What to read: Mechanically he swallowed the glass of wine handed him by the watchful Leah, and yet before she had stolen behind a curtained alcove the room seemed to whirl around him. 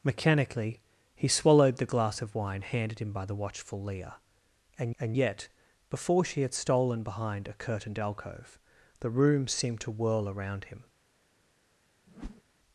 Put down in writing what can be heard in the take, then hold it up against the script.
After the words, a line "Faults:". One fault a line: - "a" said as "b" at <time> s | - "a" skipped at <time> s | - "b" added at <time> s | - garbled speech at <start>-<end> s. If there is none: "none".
Mechanically he swallowed the glass of wine handed him by the watchful Leah, and and yet before she had stolen behind a curtained alcove the room seemed to whirl around him.
Faults:
- "and" added at 5.0 s